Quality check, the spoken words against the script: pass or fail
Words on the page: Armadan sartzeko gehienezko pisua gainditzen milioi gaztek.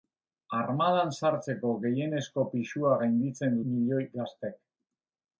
pass